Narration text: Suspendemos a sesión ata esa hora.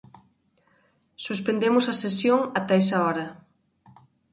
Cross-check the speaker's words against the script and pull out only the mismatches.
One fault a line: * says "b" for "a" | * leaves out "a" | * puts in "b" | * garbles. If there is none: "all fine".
all fine